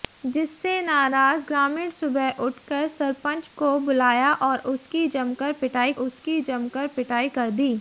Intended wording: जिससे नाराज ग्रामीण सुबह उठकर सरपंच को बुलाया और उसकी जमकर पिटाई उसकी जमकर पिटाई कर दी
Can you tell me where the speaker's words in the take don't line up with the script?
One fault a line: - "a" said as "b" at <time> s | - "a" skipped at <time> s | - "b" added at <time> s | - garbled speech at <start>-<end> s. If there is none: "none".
none